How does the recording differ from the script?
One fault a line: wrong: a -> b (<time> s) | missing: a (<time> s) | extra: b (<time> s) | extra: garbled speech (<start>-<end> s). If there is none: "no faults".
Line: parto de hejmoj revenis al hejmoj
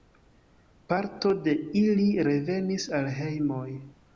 wrong: hejmoj -> ili (1.8 s)